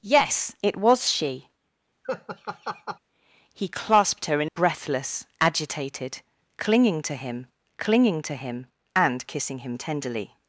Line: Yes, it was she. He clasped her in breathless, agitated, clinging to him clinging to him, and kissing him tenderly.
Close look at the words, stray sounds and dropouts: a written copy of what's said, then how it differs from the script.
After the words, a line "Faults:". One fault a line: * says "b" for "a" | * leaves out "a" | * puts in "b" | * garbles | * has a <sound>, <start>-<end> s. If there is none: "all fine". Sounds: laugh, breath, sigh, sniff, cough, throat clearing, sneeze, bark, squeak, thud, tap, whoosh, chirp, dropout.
Yes, it was she. He clasped her in breathless, agitated, clinging to him clinging to him, and kissing him tenderly.
Faults:
* has a laugh, 2.0-3.0 s